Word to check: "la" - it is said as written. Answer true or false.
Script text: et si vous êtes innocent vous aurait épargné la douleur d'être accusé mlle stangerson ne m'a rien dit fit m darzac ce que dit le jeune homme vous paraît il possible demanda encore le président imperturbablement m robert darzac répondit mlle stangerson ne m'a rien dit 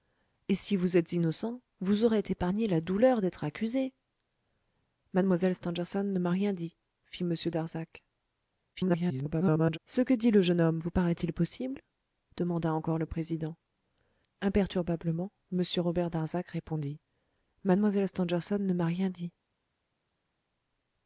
true